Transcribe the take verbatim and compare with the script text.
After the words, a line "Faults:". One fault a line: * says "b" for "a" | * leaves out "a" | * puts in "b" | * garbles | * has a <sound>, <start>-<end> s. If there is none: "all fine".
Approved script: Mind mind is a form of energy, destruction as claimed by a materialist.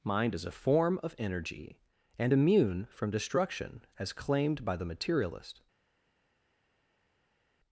Mind is a form of energy, and immune from destruction as claimed by the materialist.
Faults:
* leaves out "mind"
* puts in "and immune from"
* says "the" for "a"